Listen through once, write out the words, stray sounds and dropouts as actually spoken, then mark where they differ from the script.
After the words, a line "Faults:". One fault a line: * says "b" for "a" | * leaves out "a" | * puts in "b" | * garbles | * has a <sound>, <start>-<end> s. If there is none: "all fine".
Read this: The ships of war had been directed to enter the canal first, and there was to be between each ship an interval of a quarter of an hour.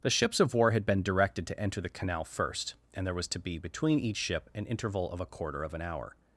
The ships of war had been directed to enter the canal first, and there was to be between each ship an interval of a quarter of an hour.
Faults:
all fine